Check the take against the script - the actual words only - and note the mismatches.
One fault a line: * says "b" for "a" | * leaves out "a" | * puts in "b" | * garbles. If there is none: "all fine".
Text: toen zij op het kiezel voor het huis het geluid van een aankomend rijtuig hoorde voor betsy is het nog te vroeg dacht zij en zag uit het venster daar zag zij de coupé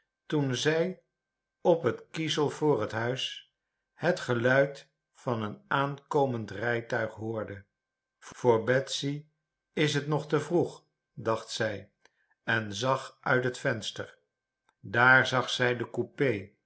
all fine